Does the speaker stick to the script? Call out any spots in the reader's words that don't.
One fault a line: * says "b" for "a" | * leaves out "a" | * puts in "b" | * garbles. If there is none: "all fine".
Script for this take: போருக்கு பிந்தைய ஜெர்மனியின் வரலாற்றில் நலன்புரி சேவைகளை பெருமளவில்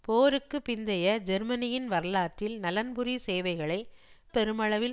all fine